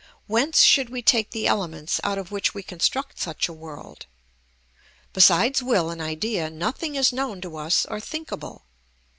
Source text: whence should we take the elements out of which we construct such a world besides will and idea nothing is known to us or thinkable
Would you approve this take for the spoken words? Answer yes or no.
yes